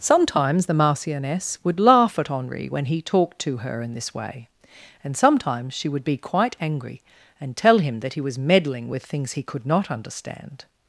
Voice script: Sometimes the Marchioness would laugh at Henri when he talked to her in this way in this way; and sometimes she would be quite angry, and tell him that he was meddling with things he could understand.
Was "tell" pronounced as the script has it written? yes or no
yes